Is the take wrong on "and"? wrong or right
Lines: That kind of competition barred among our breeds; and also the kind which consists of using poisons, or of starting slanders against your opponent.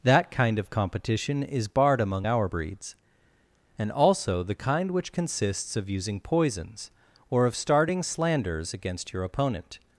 right